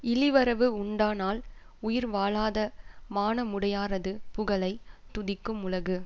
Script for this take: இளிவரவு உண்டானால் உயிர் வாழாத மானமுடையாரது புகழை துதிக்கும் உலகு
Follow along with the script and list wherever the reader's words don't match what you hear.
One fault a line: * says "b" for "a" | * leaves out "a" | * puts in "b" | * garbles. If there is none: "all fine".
all fine